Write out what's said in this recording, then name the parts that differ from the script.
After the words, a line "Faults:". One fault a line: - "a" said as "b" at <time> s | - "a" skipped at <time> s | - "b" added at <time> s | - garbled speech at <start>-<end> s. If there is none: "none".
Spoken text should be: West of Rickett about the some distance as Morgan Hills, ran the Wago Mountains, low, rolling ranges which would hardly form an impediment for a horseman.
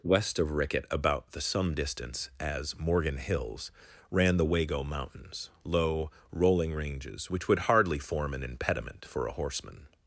West of Rickett about the some distance as Morgan Hills, ran the Wago Mountains, low, rolling ranges which would hardly form an impediment for a horseman.
Faults:
none